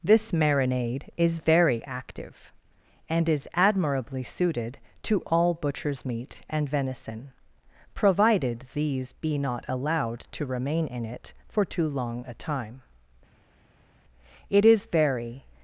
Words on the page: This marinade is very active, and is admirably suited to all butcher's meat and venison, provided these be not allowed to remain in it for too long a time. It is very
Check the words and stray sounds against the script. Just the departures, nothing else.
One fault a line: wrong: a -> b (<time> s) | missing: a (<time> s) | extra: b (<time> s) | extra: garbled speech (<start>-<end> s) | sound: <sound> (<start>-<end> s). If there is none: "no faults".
no faults